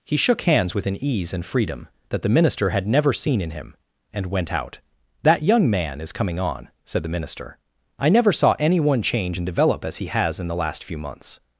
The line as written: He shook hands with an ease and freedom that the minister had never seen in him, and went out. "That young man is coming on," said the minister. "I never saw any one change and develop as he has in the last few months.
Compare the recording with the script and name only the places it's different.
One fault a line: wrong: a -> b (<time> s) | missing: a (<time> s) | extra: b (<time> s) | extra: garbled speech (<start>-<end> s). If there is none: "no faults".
no faults